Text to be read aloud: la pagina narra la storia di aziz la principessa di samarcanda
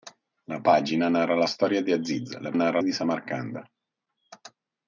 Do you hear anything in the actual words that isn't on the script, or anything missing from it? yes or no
yes